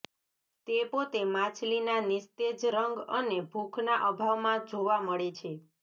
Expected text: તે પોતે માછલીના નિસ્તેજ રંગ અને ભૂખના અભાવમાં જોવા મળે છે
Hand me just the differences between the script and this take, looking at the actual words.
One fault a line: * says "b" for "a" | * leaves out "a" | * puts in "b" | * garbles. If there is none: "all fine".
all fine